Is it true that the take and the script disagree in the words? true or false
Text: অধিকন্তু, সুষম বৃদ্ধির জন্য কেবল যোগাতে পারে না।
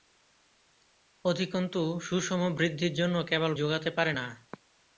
false